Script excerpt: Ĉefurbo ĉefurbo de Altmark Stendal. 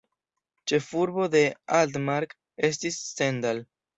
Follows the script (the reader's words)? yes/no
no